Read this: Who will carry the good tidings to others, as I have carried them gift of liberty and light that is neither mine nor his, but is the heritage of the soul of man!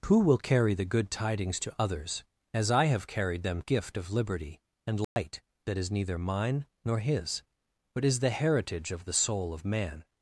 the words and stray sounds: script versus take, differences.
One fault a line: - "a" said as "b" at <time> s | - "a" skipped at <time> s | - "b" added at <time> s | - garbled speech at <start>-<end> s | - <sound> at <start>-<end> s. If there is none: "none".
- dropout at 5.0-5.2 s